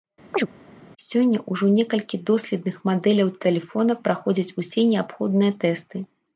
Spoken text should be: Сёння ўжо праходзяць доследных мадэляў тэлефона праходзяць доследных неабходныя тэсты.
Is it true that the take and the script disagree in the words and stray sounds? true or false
true